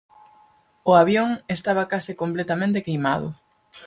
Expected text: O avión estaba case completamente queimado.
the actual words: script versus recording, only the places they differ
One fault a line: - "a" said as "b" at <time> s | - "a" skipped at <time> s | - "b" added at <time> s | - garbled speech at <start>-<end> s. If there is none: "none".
none